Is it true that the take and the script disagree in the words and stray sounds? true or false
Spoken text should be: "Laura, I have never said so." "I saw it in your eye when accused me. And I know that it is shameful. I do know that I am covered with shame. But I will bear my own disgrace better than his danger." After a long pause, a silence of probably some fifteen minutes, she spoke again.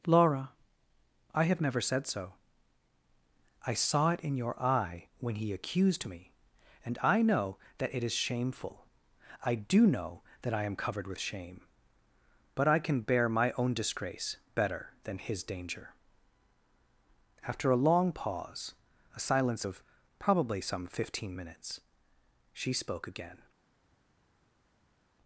true